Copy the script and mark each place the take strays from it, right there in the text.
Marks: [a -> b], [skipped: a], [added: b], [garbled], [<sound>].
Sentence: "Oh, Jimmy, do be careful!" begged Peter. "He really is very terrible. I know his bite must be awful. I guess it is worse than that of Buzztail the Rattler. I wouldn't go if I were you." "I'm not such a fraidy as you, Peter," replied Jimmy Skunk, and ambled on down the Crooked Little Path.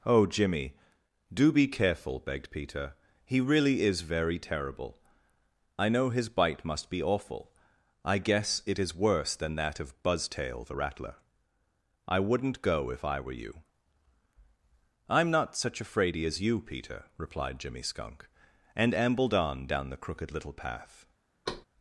"Oh, Jimmy, do be careful!" begged Peter. "He really is very terrible. I know his bite must be awful. I guess it is worse than that of Buzztail the Rattler. I wouldn't go if I were you." "I'm not such a fraidy as you, Peter," replied Jimmy Skunk, and ambled on down the Crooked Little Path. [thud]